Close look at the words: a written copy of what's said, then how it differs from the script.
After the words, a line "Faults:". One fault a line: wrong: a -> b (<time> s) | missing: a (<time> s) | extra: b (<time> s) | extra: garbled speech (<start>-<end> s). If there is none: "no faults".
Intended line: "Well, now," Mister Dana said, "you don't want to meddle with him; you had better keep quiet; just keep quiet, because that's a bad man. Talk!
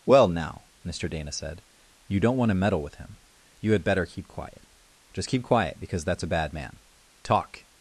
"Well, now," Mister Dana said, "you don't want to meddle with him; you had better keep quiet; just keep quiet, because that's a bad man. Talk!
Faults:
no faults